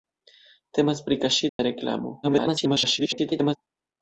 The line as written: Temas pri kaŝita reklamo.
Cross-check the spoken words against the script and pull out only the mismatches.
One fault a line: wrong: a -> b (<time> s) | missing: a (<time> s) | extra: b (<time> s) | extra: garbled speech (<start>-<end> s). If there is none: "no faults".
extra: garbled speech (2.2-3.6 s)